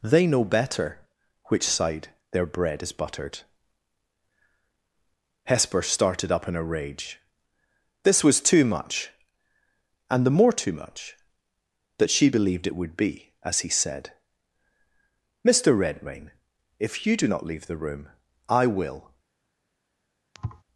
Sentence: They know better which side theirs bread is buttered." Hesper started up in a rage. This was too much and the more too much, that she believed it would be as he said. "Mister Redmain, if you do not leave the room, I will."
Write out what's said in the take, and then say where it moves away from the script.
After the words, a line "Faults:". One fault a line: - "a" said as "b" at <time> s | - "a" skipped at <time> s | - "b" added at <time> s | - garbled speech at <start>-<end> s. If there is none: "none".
They know better which side their bread is buttered." Hesper started up in a rage. This was too much and the more too much, that she believed it would be as he said. "Mister Redmain, if you do not leave the room, I will."
Faults:
- "theirs" said as "their" at 2.3 s